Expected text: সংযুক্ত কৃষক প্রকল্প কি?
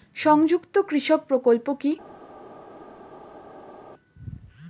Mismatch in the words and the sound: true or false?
false